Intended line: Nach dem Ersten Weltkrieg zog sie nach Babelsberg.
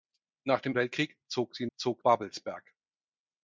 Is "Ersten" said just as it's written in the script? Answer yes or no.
no